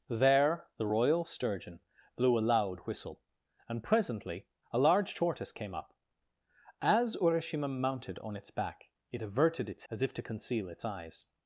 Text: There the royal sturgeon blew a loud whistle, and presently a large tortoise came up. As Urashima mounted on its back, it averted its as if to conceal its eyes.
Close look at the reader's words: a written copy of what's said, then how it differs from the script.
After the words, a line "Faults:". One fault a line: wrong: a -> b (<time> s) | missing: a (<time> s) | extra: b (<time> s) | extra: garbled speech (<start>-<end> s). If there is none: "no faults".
There the royal sturgeon blew a loud whistle, and presently a large tortoise came up. As Urashima mounted on its back, it averted its as if to conceal its eyes.
Faults:
no faults